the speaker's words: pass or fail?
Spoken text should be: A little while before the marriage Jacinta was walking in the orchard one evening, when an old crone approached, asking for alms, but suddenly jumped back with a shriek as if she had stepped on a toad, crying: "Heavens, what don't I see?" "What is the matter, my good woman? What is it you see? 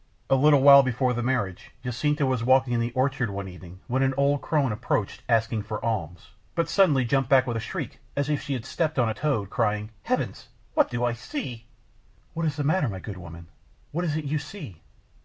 fail